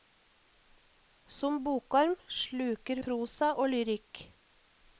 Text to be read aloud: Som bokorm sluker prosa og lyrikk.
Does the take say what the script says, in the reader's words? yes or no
yes